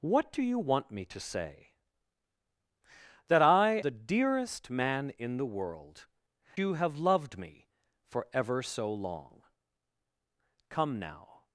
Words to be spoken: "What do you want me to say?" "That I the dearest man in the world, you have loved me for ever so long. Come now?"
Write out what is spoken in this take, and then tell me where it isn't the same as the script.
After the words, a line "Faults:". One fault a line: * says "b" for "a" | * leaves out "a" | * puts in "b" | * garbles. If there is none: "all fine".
"What do you want me to say?" "That I the dearest man in the world, you have loved me for ever so long. Come now?"
Faults:
all fine